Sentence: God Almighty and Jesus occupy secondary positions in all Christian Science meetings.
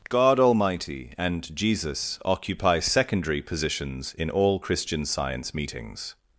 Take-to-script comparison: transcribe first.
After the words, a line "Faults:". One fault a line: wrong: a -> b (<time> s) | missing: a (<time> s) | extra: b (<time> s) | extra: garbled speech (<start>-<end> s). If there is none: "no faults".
God Almighty and Jesus occupy secondary positions in all Christian Science meetings.
Faults:
no faults